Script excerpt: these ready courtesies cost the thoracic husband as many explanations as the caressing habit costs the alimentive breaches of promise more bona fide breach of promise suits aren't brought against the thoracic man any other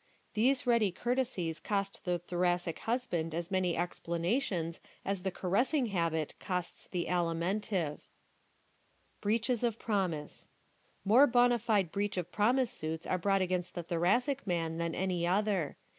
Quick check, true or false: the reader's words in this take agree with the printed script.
false